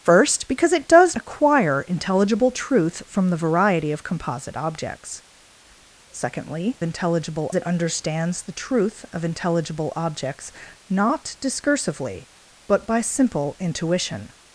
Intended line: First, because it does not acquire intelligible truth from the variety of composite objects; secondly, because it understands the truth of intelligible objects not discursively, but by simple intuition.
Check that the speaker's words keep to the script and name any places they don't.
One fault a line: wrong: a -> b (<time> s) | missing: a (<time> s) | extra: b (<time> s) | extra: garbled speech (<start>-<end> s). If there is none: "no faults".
missing: not (1.1 s)
wrong: because -> intelligible (6.8 s)